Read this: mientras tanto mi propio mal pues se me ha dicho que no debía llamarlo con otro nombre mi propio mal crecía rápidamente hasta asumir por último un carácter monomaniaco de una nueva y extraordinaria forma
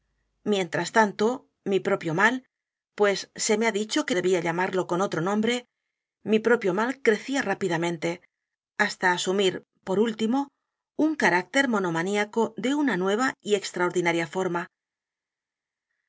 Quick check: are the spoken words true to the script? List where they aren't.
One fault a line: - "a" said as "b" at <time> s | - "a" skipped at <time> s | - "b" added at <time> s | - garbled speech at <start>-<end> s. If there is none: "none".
- "no" skipped at 4.2 s